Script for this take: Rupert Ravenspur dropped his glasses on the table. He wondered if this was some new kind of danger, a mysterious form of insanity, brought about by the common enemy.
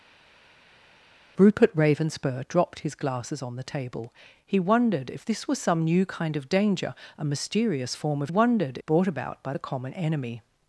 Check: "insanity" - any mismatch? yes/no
yes